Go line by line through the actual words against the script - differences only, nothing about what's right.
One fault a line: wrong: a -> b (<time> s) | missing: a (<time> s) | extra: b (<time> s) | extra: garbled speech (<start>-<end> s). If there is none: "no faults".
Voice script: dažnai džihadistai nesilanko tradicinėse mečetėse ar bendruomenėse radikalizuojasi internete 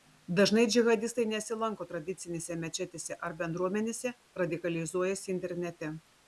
no faults